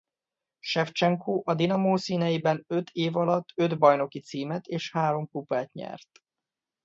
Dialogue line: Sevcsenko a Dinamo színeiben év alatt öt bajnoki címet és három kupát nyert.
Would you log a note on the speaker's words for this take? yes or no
yes